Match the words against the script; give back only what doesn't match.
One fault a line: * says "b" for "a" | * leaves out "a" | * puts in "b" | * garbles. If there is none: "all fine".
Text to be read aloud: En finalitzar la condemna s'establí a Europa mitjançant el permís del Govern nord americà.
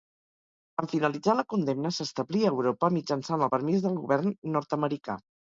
all fine